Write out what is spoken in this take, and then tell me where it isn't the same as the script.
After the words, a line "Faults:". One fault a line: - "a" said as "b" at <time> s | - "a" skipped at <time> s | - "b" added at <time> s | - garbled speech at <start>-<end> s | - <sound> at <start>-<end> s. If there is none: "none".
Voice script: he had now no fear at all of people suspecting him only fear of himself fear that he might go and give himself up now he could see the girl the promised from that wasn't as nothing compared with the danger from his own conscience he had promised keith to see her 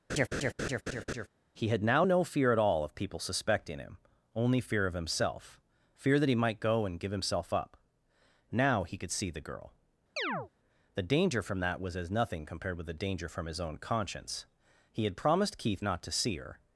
he had now no fear at all of people suspecting him only fear of himself fear that he might go and give himself up now he could see the girl the danger from that was as nothing compared with the danger from his own conscience he had promised keith not to see her
Faults:
- laugh at 0.1-1.3 s
- chirp at 10.2-10.5 s
- "promised" said as "danger" at 11.0 s
- "wasn't" said as "was" at 11.8 s
- "not" added at 15.8 s